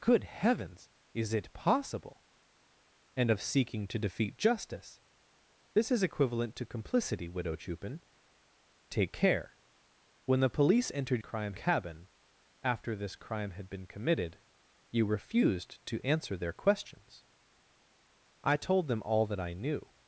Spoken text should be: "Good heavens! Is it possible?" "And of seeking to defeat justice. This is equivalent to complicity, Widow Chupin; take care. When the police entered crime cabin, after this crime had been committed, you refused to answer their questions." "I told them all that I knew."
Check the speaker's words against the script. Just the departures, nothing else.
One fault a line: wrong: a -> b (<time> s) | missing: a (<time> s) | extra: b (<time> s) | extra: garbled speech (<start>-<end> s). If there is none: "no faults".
no faults